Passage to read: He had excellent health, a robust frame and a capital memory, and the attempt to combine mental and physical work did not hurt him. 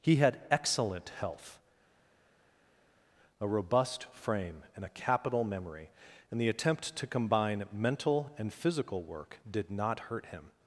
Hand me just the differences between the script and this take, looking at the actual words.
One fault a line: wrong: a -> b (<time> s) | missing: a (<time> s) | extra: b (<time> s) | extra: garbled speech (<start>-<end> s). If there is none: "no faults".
no faults